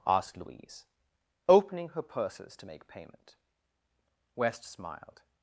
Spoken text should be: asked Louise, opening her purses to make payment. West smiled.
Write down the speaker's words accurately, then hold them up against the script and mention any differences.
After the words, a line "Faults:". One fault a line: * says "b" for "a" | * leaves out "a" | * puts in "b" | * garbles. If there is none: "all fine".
asked Louise, opening her purses to make payment. West smiled.
Faults:
all fine